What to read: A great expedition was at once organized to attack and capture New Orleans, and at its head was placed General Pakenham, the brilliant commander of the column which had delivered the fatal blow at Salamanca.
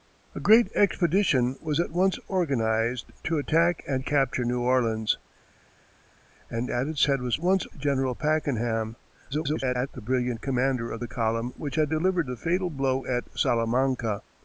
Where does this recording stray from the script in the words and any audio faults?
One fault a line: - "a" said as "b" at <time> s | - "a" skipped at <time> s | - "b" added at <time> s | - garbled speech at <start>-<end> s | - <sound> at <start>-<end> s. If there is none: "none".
- "placed" said as "once" at 7.4 s
- garbled speech at 9.3-9.9 s